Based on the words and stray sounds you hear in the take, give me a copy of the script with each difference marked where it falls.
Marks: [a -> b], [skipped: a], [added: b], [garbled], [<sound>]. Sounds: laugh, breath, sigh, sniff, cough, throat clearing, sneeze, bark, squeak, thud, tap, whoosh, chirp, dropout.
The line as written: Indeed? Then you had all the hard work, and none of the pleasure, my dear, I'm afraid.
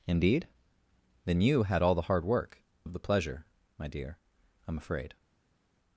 Indeed? Then you had all the hard work, [skipped: and none] of the pleasure, my dear, I'm afraid.